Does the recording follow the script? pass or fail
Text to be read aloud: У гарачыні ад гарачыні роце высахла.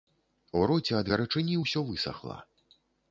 fail